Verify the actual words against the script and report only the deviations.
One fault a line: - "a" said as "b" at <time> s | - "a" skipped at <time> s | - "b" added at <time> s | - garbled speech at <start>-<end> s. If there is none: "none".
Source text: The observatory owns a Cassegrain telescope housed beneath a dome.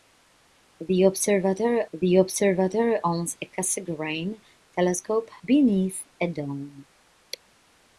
- "the observatory" added at 1.9 s
- "housed" skipped at 5.3 s